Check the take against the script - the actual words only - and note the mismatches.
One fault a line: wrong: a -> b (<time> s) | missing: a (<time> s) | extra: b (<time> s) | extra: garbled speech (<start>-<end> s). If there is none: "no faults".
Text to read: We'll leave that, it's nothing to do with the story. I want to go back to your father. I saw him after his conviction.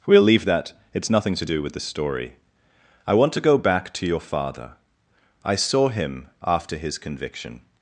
no faults